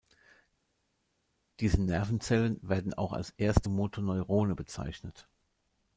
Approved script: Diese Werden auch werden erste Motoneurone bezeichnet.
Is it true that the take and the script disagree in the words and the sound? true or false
true